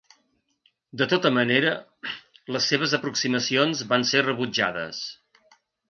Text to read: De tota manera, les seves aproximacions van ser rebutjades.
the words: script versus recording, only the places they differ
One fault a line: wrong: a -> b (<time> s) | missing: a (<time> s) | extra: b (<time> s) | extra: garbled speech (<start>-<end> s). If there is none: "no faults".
no faults